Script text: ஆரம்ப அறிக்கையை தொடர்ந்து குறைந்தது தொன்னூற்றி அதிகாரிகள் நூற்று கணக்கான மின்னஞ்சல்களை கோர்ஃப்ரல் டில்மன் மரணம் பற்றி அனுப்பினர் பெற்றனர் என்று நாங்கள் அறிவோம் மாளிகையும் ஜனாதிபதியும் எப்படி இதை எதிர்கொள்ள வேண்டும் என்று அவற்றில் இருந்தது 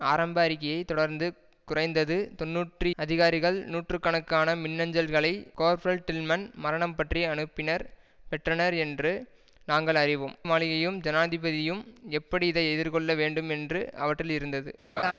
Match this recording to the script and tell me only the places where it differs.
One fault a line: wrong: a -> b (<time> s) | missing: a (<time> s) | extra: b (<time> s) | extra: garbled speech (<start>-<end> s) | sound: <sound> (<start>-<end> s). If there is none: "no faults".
sound: laugh (15.0-15.1 s)